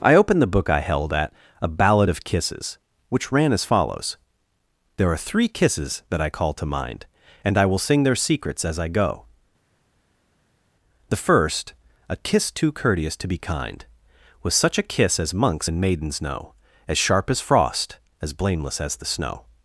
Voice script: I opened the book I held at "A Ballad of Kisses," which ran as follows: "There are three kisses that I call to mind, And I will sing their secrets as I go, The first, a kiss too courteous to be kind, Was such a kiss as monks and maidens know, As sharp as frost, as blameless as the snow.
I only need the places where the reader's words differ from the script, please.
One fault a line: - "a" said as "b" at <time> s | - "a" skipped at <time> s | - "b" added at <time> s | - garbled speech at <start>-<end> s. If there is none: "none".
none